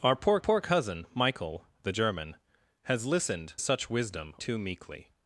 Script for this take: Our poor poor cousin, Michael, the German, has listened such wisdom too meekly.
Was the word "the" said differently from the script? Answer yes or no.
no